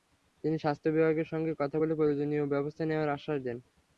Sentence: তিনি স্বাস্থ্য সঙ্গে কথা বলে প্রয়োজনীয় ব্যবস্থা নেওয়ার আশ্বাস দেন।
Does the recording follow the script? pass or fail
fail